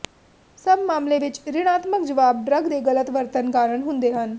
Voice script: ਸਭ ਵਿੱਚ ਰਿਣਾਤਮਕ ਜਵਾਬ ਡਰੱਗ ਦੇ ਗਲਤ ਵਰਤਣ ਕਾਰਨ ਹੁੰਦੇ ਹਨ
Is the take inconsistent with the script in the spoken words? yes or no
yes